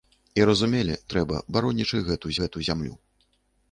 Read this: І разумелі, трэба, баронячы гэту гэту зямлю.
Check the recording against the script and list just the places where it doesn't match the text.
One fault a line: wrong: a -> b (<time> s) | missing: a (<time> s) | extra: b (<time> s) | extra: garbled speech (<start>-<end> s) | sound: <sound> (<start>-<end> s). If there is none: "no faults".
no faults